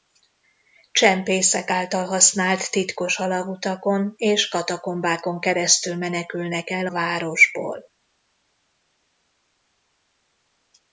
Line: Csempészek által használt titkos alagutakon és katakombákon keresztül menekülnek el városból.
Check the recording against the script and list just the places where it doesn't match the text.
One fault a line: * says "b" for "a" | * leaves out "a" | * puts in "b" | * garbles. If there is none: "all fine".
all fine